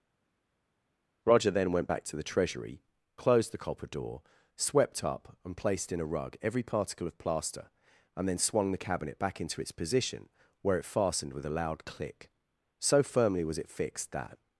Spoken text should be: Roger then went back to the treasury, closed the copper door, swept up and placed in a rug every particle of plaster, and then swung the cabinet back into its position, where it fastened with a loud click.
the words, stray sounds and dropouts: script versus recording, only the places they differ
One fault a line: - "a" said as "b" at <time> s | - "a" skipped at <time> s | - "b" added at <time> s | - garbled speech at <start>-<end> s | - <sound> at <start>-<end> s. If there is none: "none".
- "So firmly was it fixed that" added at 12.8 s